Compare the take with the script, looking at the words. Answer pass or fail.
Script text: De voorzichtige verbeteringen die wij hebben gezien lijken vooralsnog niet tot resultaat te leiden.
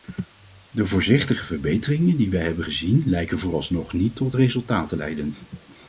pass